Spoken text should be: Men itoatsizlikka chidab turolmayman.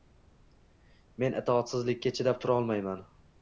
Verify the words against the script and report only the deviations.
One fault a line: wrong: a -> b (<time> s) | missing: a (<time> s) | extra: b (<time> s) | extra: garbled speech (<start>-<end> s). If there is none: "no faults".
no faults